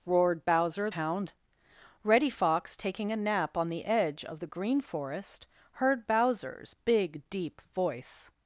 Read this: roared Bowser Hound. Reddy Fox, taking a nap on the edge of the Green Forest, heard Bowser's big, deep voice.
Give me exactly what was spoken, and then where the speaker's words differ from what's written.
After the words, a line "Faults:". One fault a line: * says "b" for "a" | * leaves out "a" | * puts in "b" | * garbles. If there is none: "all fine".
roared Bowser Hound. Reddy Fox, taking a nap on the edge of the Green Forest, heard Bowser's big, deep voice.
Faults:
all fine